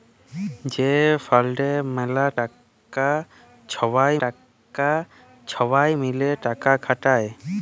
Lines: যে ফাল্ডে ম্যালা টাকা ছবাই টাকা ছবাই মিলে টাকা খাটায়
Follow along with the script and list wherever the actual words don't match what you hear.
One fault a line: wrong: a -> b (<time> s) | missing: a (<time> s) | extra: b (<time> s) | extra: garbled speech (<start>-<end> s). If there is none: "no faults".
no faults